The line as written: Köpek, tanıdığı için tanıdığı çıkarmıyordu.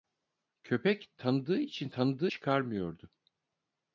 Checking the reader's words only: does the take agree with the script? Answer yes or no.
yes